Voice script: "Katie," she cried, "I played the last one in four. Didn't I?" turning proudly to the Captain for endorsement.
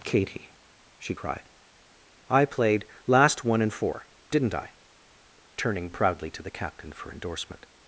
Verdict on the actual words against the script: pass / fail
fail